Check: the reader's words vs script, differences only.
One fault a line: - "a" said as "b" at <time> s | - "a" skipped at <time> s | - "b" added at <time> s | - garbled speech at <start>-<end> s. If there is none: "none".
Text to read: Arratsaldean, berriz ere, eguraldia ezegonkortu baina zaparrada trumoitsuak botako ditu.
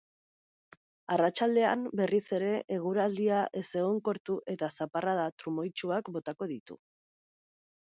- "baina" said as "eta" at 4.6 s